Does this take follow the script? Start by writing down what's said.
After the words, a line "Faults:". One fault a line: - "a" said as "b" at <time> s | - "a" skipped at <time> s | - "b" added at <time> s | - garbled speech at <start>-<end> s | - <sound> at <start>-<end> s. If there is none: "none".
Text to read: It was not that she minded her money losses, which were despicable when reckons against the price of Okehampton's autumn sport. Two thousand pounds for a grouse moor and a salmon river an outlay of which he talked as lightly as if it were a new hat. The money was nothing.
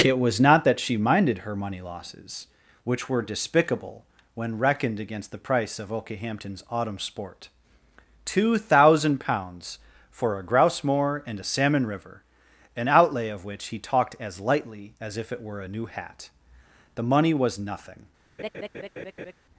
It was not that she minded her money losses, which were despicable when reckoned against the price of Okehampton's autumn sport. Two thousand pounds for a grouse moor and a salmon river an outlay of which he talked as lightly as if it were a new hat. The money was nothing.
Faults:
- "reckons" said as "reckoned" at 4.6 s
- laugh at 18.4-19.3 s